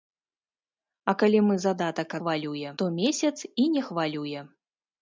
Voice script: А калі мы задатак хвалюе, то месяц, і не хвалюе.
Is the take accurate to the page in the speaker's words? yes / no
yes